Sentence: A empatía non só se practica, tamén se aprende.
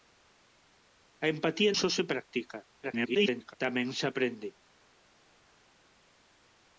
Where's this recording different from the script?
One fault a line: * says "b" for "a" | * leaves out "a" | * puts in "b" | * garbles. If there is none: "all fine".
* leaves out "non"
* garbles